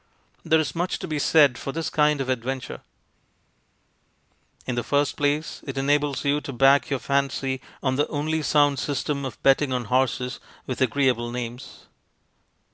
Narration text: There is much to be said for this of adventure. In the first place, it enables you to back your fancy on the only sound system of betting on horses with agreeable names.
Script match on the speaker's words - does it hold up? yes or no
no